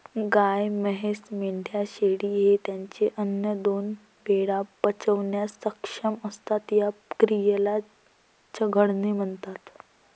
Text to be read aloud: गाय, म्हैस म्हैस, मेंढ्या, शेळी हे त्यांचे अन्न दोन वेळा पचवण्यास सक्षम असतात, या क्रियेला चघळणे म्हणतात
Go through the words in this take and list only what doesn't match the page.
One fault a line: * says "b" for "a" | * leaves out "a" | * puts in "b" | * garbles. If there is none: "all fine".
* leaves out "म्हैस"